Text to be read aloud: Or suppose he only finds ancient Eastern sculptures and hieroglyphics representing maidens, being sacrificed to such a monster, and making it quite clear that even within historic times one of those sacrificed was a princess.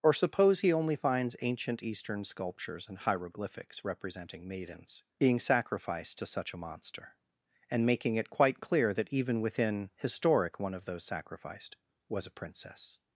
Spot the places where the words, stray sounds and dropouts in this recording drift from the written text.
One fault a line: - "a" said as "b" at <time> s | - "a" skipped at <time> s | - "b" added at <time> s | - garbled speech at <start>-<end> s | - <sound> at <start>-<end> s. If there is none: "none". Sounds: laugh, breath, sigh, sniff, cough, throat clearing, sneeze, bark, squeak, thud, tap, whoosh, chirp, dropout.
- "times" skipped at 10.6 s